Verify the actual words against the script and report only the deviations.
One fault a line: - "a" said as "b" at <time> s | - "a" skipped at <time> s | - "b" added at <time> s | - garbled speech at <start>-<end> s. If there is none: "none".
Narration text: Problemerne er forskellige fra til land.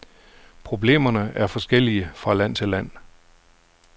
- "land" added at 2.3 s